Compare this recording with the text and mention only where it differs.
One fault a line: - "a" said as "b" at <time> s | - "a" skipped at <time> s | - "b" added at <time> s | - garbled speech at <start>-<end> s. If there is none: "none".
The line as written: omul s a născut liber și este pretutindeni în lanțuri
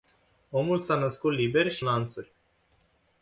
- "este pretutindeni în" skipped at 1.9 s